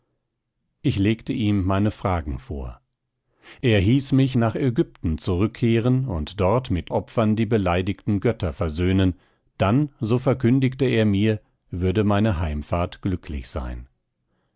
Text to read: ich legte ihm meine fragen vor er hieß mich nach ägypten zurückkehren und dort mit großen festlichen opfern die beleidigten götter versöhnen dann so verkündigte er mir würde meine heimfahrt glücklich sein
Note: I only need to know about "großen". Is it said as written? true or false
false